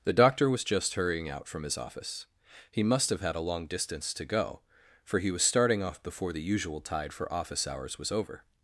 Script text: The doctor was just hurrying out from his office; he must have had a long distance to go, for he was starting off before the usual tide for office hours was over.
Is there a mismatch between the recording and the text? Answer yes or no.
no